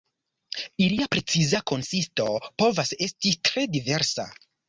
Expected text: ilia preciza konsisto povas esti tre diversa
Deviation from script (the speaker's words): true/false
false